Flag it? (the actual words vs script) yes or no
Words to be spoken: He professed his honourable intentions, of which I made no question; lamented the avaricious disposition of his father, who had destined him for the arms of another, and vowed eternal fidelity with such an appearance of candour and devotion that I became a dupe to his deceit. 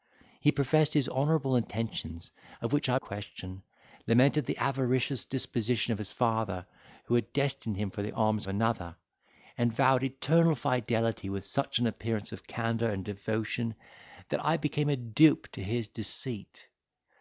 yes